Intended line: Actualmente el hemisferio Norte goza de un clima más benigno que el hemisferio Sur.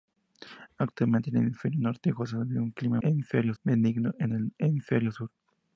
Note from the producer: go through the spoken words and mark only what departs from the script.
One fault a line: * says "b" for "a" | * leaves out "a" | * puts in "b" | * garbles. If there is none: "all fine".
* says "hemisferio" for "más"